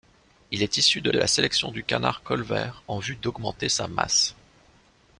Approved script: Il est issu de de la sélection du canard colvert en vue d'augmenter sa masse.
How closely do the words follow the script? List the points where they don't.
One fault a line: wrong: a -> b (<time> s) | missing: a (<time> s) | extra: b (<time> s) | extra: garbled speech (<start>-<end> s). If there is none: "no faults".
no faults